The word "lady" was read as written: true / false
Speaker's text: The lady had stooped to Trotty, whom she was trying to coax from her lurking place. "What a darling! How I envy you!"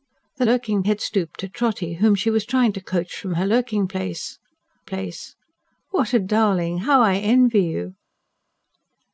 false